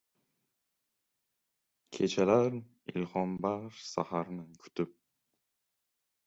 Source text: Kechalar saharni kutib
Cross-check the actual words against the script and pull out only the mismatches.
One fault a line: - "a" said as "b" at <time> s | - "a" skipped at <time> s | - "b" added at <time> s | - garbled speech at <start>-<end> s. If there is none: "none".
- "ilhombaxsh" added at 2.9 s